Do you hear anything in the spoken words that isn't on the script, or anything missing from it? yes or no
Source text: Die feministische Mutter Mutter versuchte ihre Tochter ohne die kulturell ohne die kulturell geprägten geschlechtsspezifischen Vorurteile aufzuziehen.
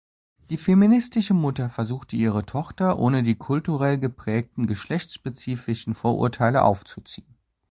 yes